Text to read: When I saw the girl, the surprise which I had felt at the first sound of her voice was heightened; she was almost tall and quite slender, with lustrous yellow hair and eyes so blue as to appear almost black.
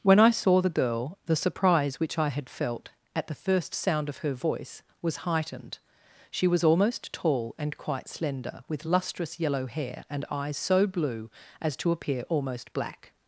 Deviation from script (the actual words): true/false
false